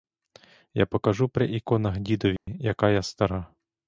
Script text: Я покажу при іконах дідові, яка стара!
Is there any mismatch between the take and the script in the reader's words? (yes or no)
yes